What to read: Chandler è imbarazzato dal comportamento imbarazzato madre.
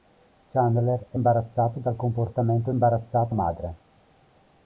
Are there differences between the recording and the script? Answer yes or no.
no